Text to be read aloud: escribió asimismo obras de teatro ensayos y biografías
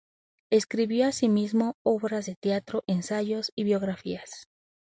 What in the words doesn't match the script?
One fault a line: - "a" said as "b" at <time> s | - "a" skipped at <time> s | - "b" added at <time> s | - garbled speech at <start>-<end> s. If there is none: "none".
none